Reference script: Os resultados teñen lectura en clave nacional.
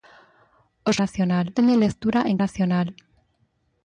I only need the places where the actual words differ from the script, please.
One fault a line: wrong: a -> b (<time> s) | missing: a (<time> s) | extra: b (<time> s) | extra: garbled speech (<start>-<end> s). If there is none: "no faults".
wrong: resultados -> nacional (1.0 s)
missing: clave (2.4 s)